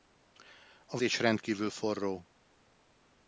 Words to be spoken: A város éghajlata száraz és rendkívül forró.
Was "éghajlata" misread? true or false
true